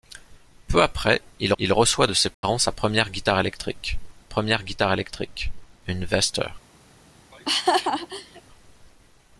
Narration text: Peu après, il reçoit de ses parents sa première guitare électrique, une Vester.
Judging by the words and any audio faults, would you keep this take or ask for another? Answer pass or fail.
fail